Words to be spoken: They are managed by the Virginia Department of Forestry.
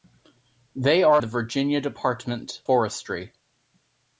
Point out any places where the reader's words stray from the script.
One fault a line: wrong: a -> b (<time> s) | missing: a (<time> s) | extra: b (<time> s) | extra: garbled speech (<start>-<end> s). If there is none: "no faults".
missing: managed by (1.2 s)
missing: of (2.6 s)